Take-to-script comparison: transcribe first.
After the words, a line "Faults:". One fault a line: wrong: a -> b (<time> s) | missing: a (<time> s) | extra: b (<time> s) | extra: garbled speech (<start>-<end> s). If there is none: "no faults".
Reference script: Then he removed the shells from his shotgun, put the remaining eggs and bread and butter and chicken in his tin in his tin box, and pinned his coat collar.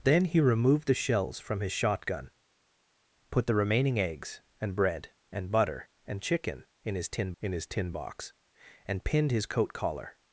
Then he removed the shells from his shotgun, put the remaining eggs and bread and butter and chicken in his tin in his tin box, and pinned his coat collar.
Faults:
no faults